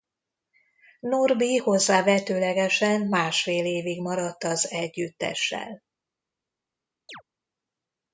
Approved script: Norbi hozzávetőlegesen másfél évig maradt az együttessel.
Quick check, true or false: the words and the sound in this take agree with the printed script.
false